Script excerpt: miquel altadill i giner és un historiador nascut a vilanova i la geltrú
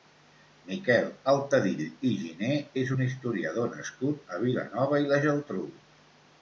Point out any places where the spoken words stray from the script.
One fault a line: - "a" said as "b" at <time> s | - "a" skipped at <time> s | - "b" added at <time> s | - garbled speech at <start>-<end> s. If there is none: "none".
none